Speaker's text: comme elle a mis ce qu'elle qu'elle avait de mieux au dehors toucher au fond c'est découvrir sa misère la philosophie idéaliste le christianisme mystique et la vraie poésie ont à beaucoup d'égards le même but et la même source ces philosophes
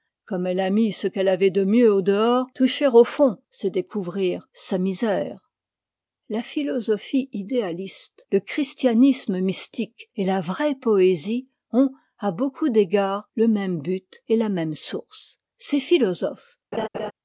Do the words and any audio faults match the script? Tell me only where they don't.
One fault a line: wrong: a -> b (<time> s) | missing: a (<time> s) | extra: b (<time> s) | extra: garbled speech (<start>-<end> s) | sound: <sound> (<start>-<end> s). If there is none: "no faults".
missing: qu'elle (1.3 s)
sound: laugh (16.7-17.1 s)